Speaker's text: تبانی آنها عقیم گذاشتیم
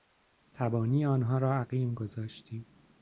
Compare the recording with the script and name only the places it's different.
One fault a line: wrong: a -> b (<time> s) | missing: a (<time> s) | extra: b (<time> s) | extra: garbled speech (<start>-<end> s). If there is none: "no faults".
extra: را (1.4 s)